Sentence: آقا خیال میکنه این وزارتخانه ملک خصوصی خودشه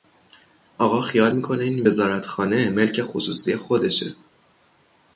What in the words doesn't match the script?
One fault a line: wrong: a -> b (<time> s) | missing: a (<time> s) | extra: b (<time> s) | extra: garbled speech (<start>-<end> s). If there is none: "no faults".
no faults